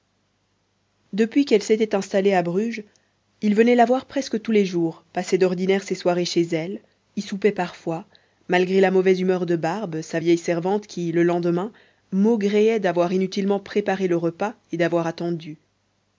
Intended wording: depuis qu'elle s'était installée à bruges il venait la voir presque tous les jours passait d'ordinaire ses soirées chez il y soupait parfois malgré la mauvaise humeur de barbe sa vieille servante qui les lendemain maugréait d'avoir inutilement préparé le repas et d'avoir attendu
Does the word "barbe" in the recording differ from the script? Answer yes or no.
no